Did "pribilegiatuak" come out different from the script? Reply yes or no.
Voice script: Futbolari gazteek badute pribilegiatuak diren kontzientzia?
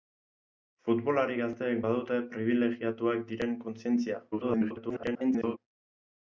no